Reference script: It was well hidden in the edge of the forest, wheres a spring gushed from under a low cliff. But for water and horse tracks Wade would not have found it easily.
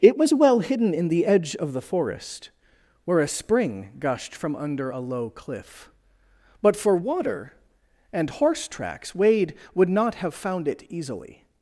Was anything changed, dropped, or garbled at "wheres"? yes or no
yes